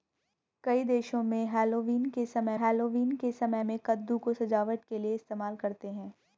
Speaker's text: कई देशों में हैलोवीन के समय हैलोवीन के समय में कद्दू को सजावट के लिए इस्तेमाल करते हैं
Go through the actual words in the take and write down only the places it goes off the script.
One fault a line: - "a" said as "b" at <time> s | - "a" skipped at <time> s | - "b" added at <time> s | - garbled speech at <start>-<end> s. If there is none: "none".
none